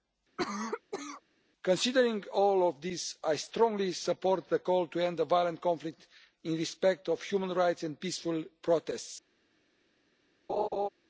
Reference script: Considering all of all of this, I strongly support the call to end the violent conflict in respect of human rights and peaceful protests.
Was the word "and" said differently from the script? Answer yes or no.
no